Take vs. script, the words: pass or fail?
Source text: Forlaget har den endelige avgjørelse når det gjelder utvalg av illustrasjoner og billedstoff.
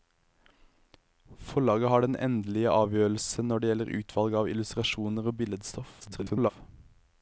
fail